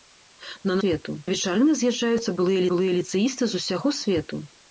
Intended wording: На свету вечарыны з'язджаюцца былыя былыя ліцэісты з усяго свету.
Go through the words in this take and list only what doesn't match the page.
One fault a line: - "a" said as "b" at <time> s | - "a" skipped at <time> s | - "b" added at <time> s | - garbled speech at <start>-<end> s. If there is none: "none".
none